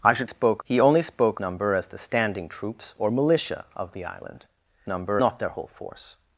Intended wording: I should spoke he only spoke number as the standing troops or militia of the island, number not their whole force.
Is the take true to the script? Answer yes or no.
yes